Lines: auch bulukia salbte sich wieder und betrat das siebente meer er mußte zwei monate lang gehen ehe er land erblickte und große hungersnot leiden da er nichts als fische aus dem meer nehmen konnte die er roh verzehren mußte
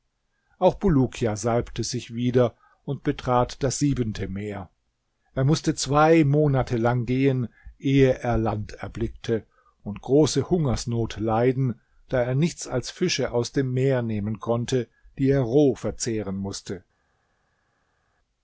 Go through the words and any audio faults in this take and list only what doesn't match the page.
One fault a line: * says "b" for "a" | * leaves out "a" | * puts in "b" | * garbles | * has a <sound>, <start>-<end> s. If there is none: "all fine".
all fine